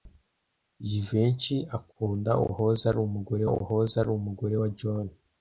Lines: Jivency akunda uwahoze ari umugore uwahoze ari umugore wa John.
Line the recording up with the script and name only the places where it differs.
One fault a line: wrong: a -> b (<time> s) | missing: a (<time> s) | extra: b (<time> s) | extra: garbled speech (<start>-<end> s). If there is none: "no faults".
no faults